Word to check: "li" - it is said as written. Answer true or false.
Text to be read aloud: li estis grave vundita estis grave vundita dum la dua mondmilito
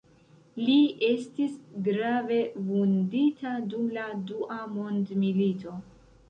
true